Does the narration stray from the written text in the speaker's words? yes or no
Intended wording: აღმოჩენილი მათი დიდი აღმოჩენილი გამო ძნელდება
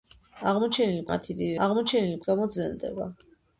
no